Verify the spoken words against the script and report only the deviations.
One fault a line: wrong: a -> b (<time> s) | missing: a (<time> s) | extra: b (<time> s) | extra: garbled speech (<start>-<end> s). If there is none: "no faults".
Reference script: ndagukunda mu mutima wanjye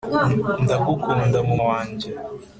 missing: mutima (1.6 s)